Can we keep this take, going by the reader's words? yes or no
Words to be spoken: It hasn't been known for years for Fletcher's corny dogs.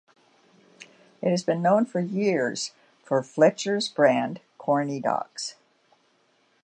no